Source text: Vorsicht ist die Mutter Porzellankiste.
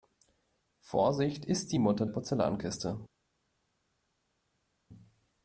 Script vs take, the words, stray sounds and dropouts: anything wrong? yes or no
no